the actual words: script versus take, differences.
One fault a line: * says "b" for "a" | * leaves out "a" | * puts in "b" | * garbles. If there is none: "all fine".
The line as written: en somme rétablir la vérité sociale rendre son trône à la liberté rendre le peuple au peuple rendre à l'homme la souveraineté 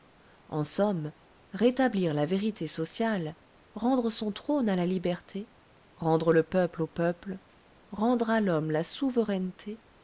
all fine